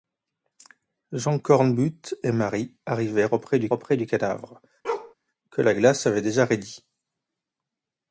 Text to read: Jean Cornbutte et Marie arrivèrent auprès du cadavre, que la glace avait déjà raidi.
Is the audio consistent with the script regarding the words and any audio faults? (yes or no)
no